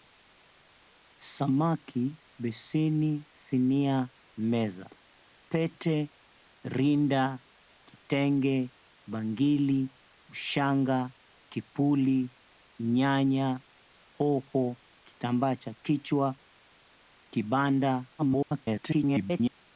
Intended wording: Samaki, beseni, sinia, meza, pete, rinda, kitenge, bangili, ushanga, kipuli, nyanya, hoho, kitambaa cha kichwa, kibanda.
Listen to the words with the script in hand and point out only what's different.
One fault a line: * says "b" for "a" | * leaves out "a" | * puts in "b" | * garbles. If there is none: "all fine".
* garbles